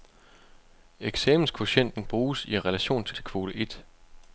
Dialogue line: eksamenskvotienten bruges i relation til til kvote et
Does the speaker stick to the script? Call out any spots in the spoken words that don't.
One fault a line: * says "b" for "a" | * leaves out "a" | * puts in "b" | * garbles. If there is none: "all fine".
all fine